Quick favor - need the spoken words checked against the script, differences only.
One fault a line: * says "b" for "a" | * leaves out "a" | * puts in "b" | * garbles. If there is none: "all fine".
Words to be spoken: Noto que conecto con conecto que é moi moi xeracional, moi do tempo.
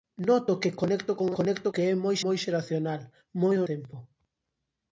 all fine